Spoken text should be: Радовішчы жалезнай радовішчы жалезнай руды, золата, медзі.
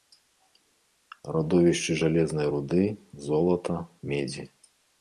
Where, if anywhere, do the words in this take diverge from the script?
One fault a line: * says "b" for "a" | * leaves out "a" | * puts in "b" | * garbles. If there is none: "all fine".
* leaves out "радовішчы жалезнай"